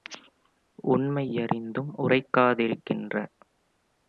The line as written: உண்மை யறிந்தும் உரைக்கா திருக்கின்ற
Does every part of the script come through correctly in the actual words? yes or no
yes